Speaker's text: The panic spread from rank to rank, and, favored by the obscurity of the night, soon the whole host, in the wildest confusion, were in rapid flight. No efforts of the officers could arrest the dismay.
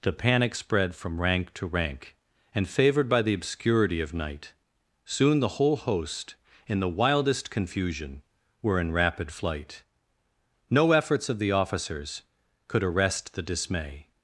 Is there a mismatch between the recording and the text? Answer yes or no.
yes